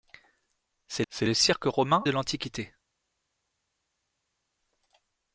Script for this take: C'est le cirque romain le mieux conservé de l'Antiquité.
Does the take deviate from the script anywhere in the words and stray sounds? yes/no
yes